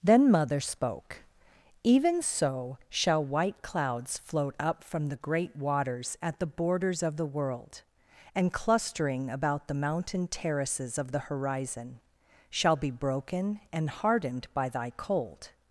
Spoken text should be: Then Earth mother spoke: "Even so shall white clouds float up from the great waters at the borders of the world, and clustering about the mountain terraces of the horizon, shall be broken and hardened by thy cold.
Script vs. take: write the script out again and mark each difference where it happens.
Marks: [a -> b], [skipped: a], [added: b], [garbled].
Then [skipped: Earth] mother spoke: "Even so shall white clouds float up from the great waters at the borders of the world, and clustering about the mountain terraces of the horizon, shall be broken and hardened by thy cold.